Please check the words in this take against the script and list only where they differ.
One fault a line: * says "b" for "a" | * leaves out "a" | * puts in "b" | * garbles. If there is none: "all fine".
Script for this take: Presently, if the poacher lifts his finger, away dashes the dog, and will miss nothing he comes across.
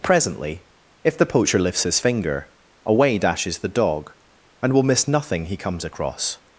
all fine